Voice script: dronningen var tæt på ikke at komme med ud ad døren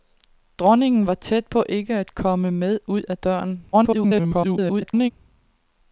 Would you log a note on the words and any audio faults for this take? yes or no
yes